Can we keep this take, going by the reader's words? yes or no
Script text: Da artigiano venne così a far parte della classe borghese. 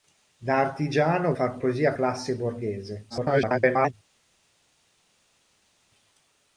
no